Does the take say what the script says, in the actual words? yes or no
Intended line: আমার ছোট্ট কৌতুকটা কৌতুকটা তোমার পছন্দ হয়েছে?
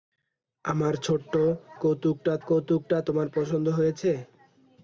yes